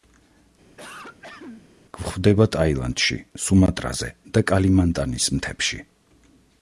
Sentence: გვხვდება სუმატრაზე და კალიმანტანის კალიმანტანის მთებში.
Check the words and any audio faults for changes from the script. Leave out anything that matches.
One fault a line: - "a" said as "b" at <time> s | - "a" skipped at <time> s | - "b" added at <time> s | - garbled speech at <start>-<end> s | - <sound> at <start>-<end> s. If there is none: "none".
- throat clearing at 0.8-1.7 s
- "ტაილანდში" added at 2.5 s
- "კალიმანტანის" skipped at 5.3 s